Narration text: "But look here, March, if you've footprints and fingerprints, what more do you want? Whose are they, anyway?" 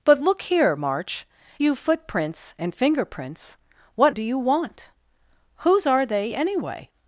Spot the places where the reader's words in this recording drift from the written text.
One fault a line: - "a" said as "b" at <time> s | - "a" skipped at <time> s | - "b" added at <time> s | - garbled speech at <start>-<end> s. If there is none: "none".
- "if" skipped at 1.3 s
- "more" skipped at 4.2 s